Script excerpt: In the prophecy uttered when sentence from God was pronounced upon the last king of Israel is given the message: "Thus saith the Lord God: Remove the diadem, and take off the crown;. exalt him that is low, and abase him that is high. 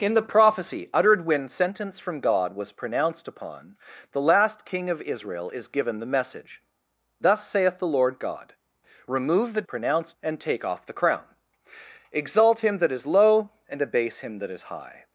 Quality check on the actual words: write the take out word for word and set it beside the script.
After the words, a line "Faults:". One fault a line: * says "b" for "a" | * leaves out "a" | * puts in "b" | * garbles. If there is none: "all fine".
In the prophecy uttered when sentence from God was pronounced upon the last king of Israel is given the message: "Thus saith the Lord God: Remove the pronounced, and take off the crown;. exalt him that is low, and abase him that is high.
Faults:
* says "pronounced" for "diadem"